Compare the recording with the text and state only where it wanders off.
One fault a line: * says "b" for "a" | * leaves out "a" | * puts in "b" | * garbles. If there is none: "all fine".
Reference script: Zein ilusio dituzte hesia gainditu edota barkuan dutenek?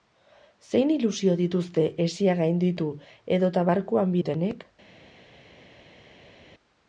all fine